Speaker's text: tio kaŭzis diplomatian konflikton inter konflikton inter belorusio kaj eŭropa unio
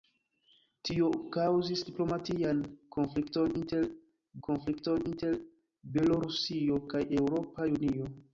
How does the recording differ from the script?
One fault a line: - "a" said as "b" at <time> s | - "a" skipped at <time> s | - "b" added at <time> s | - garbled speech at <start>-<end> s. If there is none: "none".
none